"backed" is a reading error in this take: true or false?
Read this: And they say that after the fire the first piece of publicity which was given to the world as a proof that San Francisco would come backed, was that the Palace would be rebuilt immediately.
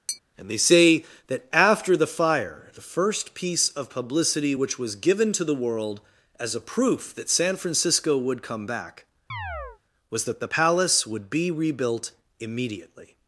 true